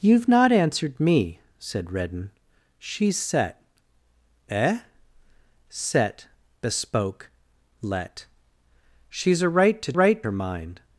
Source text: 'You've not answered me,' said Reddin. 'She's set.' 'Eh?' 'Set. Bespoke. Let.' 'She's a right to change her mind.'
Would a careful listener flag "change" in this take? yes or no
yes